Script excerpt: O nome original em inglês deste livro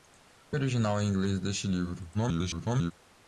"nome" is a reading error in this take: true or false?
true